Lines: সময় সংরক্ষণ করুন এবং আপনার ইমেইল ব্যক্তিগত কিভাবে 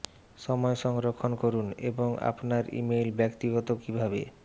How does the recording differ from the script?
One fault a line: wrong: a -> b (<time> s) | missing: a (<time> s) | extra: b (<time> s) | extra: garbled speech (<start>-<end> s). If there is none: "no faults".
no faults